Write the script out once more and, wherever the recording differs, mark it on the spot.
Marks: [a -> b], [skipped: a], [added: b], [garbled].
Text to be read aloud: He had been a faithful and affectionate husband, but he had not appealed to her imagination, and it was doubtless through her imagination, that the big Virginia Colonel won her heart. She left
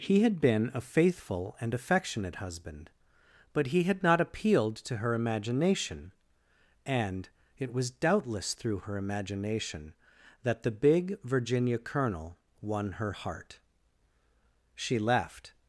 He had been a faithful and affectionate husband, but he had not appealed to her imagination, and it was doubtless through her imagination, that the big Virginia Colonel won her heart. She left